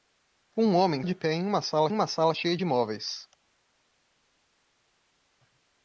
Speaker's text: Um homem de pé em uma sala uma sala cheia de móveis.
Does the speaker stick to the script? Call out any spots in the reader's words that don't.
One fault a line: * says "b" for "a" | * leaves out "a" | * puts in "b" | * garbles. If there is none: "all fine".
all fine